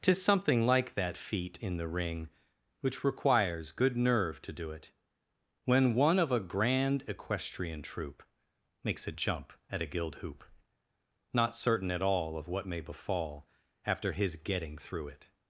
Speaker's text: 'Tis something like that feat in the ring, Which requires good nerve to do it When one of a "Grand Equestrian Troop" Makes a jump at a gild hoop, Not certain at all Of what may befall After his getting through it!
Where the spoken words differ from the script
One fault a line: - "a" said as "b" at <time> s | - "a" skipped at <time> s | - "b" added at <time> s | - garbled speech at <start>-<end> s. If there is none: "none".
none